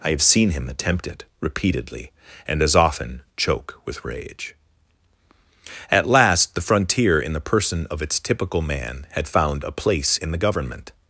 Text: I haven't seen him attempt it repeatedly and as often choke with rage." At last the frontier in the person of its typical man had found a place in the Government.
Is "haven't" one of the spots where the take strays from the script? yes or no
yes